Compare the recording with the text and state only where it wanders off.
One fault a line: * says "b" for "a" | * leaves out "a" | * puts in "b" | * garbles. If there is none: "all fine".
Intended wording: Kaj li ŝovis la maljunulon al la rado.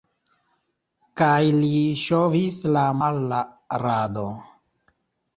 * leaves out "maljunulon"